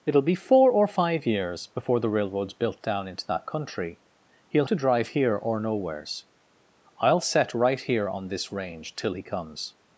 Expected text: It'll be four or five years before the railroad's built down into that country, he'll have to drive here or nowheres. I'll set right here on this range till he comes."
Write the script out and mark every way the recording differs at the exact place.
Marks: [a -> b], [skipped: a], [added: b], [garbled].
It'll be four or five years before the railroad's built down into that country, he'll [skipped: have] to drive here or nowheres. I'll set right here on this range till he comes."